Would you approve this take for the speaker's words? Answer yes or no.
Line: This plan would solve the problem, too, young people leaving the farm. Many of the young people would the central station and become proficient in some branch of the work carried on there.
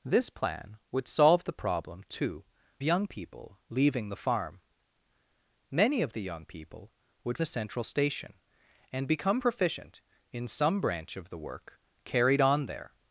yes